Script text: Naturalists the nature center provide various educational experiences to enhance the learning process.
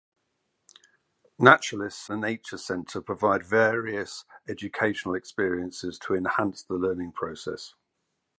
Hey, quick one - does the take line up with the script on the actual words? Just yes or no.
yes